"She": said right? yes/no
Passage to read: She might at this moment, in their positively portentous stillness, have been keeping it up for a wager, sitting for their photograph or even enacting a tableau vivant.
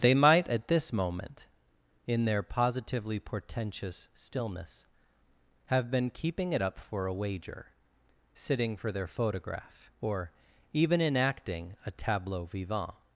no